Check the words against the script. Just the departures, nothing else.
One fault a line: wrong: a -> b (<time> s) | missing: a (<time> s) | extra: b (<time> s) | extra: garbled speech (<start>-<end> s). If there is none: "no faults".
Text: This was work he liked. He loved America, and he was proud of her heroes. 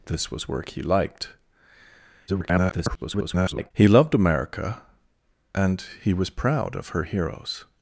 extra: garbled speech (2.3-3.7 s)